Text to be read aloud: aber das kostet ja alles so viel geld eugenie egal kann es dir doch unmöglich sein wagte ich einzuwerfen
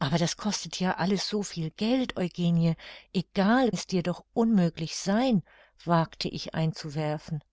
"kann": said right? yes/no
no